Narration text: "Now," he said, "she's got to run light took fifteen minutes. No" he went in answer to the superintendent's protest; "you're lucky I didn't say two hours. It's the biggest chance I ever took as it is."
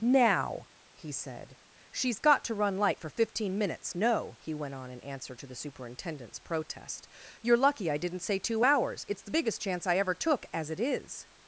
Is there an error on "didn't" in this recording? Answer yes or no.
no